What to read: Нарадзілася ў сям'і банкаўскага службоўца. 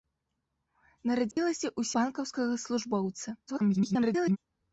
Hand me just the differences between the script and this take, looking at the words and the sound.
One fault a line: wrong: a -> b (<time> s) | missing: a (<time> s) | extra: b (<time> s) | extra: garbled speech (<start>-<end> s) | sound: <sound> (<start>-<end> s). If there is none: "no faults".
sound: dropout (1.3-1.4 s)
missing: сям'і (1.9 s)
extra: garbled speech (3.5-4.4 s)